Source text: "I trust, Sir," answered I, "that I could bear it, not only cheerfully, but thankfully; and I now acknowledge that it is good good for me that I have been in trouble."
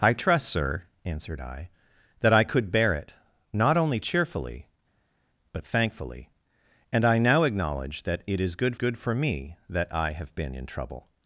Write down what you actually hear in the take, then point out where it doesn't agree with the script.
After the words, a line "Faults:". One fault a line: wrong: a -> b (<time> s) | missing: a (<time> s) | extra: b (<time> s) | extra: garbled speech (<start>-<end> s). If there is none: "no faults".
"I trust, Sir," answered I, "that I could bear it, not only cheerfully, but thankfully; and I now acknowledge that it is good good for me that I have been in trouble."
Faults:
no faults